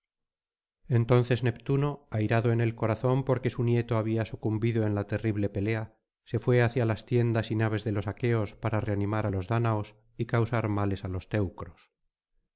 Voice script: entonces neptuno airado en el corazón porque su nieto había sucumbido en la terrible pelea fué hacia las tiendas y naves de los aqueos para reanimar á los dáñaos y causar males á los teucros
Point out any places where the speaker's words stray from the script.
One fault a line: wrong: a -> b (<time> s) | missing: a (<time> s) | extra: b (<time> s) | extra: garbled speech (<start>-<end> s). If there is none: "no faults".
extra: se (6.2 s)